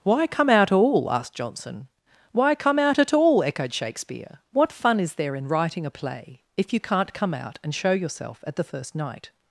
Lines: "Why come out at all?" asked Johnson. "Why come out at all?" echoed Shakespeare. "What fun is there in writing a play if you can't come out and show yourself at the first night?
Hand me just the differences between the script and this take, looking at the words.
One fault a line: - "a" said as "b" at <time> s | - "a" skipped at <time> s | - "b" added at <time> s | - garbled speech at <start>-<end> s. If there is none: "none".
- "at" skipped at 0.7 s